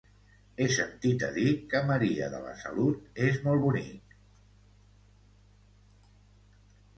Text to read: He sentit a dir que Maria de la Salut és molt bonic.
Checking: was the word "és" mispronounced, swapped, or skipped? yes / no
no